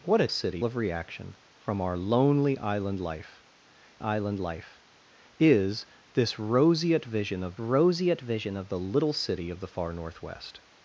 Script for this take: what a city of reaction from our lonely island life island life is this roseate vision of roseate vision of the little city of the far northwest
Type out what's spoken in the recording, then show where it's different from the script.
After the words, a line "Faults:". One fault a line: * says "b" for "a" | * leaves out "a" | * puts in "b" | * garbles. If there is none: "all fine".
what a city of reaction from our lonely island life island life is this roseate vision of roseate vision of the little city of the far northwest
Faults:
all fine